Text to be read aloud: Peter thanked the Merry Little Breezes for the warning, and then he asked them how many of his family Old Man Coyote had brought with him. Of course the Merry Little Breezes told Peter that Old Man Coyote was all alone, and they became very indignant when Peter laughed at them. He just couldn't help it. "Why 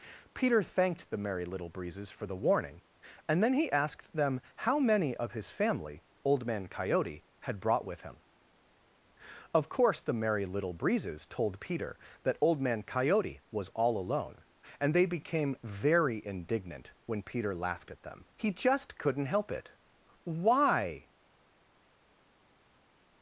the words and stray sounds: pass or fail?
pass